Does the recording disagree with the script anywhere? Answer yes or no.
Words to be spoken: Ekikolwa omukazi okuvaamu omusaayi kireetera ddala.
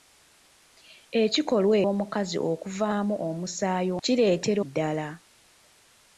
no